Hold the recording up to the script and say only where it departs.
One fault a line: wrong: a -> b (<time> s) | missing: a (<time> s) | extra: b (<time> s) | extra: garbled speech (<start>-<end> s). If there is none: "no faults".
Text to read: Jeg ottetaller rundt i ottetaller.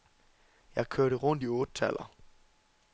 wrong: ottetaller -> kørte (0.9 s)